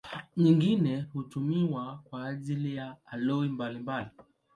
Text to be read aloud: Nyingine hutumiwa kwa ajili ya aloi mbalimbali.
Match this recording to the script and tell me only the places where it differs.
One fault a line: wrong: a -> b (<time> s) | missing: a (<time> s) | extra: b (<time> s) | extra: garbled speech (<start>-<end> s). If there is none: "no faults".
no faults